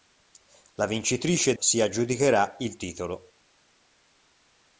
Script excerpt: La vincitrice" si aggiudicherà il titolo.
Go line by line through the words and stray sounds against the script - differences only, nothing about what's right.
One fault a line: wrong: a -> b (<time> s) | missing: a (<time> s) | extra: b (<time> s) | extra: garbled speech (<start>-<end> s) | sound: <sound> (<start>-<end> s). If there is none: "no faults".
no faults